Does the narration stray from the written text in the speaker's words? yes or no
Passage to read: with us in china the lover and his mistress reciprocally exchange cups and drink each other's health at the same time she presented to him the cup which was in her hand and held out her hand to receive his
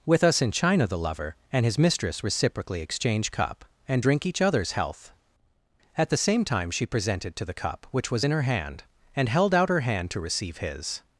yes